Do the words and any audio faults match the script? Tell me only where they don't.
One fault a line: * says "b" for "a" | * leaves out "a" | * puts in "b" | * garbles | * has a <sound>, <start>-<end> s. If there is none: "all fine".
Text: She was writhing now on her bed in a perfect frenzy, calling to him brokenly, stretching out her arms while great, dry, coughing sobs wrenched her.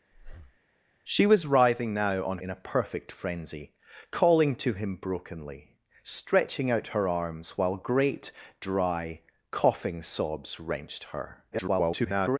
* has a breath, 0.1-0.6 s
* leaves out "her bed"
* garbles